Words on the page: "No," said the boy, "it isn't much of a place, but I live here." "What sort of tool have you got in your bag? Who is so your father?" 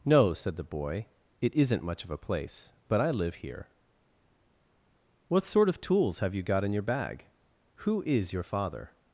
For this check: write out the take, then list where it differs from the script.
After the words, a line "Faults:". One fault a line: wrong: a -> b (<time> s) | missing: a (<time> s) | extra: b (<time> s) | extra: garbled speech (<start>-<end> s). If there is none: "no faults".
"No," said the boy, "it isn't much of a place, but I live here." "What sort of tools have you got in your bag? Who is your father?"
Faults:
wrong: tool -> tools (5.8 s)
missing: so (8.3 s)